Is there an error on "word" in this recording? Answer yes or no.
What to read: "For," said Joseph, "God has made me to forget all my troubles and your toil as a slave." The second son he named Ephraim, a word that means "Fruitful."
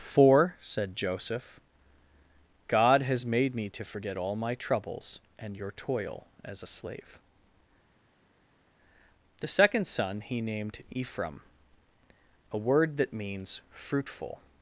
no